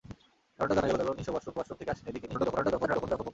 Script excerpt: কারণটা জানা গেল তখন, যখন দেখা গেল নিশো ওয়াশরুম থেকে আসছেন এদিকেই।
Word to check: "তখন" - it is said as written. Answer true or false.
false